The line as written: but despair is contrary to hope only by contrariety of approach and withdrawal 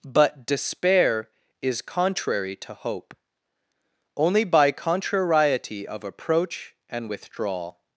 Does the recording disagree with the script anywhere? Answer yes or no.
no